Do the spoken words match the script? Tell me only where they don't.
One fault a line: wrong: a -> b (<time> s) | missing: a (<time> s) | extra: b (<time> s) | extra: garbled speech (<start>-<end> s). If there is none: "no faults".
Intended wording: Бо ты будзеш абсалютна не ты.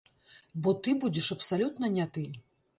no faults